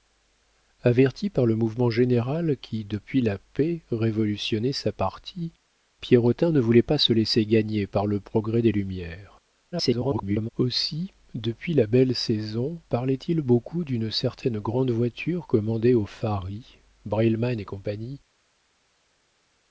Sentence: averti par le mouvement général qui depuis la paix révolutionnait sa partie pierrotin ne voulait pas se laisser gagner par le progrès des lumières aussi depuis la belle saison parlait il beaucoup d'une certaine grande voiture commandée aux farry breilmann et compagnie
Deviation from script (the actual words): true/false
true